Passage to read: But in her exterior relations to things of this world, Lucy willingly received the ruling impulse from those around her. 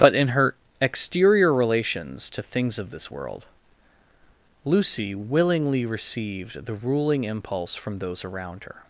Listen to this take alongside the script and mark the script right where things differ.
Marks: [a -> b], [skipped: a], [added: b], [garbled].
But in her exterior relations to things of this world, Lucy willingly received the ruling impulse from those around her.